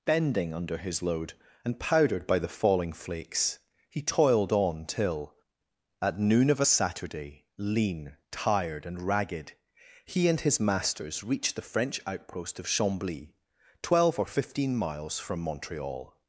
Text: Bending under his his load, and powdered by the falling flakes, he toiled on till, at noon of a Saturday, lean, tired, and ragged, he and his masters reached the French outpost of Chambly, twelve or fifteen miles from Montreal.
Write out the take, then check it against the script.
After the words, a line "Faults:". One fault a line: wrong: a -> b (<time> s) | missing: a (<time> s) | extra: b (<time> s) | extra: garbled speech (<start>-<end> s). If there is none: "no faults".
Bending under his load, and powdered by the falling flakes, he toiled on till, at noon of a Saturday, lean, tired, and ragged, he and his masters reached the French outpost of Chambly, twelve or fifteen miles from Montreal.
Faults:
missing: his (1.0 s)